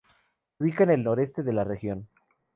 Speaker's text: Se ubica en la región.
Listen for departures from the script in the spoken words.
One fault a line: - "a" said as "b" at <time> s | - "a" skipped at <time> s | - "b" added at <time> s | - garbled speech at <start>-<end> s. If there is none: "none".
- "el noreste de" added at 0.9 s